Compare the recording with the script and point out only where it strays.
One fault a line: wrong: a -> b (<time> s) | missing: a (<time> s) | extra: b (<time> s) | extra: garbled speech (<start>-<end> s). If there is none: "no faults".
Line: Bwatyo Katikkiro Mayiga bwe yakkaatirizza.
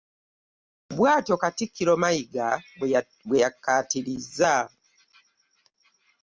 no faults